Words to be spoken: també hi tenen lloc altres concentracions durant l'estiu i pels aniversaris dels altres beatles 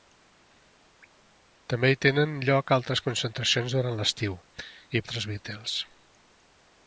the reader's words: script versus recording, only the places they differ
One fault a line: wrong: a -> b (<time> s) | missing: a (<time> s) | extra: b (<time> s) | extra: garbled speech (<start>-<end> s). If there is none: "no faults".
missing: pels aniversaris dels (5.0 s)